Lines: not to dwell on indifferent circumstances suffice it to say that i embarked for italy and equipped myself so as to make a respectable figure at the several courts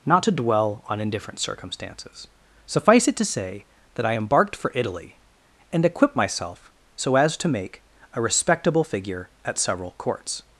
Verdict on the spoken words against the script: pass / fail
fail